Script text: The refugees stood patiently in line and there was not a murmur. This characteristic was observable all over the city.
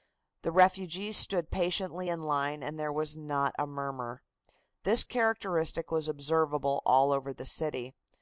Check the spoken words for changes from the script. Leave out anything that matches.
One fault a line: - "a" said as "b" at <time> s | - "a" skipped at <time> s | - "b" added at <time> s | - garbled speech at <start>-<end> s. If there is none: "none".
none